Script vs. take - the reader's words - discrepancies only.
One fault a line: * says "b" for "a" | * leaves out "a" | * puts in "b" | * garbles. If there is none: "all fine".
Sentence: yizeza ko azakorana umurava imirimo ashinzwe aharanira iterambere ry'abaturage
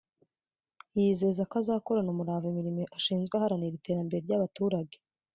all fine